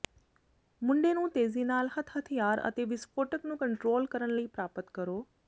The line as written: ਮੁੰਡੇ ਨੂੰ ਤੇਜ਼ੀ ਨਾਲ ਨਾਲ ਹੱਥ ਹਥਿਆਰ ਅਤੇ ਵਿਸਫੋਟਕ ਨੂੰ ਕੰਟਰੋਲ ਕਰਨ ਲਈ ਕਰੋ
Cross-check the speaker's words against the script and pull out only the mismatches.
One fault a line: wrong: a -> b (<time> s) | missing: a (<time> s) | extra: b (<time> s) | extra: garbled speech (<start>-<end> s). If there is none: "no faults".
missing: ਨਾਲ (1.9 s)
extra: ਪ੍ਰਾਪਤ (4.5 s)